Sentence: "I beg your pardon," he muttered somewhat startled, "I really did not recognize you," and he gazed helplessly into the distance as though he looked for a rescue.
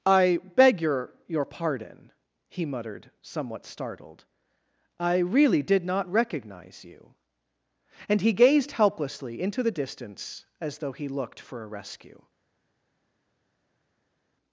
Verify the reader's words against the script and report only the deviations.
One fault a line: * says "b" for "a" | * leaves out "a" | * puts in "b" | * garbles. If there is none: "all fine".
* puts in "your"